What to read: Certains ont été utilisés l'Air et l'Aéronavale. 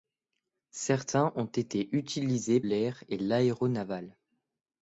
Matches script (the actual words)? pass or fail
pass